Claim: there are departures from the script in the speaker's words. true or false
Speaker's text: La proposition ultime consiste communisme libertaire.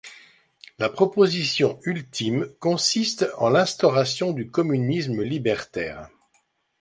true